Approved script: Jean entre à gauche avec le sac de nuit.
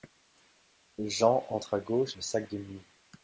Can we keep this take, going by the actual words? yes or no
no